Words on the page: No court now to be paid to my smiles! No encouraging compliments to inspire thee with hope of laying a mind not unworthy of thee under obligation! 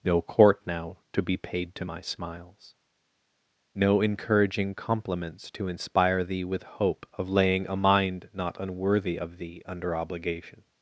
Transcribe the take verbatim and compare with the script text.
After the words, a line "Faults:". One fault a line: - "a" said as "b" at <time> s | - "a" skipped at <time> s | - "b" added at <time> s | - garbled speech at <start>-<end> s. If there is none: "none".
No court now to be paid to my smiles! No encouraging compliments to inspire thee with hope of laying a mind not unworthy of thee under obligation!
Faults:
none